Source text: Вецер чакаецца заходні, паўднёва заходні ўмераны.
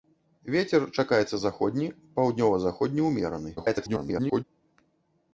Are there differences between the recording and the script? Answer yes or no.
yes